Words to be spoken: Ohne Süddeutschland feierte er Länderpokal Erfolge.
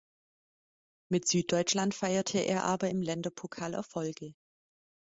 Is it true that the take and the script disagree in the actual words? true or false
true